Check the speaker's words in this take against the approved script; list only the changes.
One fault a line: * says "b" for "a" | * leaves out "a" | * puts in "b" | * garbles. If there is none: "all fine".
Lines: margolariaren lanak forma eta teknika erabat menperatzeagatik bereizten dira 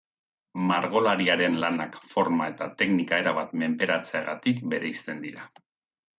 all fine